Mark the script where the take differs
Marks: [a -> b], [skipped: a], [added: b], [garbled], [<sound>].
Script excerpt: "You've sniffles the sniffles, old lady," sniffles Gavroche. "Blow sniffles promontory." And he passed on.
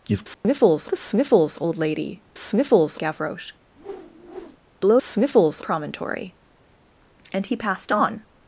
"You've sniffles [dropout] the sniffles, old lady," sniffles Gavroche. [whoosh] "Blow sniffles promontory." And he passed on.